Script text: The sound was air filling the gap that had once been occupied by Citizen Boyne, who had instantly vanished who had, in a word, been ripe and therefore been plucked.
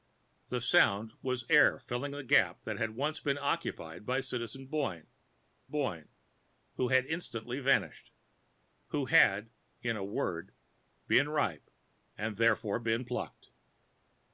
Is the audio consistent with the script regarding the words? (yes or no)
no